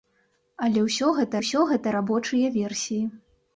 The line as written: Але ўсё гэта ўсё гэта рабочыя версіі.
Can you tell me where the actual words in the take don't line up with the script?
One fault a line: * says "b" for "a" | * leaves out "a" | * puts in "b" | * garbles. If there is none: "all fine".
all fine